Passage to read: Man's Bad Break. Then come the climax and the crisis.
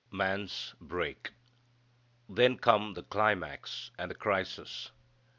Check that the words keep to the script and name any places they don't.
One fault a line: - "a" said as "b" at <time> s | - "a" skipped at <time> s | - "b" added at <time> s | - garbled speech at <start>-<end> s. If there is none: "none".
- "Bad" skipped at 0.7 s